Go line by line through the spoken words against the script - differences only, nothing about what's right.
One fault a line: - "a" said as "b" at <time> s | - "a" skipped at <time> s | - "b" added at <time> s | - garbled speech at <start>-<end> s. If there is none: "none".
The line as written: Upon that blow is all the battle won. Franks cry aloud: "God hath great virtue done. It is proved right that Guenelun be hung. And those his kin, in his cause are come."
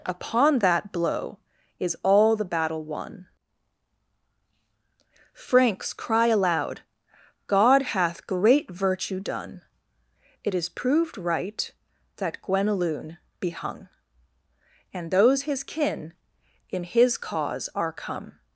none